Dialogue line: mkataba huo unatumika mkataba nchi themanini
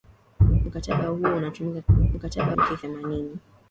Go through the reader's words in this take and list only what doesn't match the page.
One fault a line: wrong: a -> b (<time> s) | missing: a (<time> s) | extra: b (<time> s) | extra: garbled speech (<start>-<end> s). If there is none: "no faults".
no faults